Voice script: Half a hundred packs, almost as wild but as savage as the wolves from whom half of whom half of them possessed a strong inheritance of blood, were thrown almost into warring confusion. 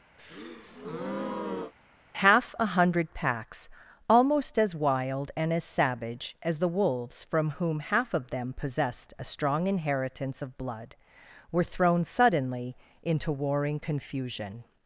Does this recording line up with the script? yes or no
no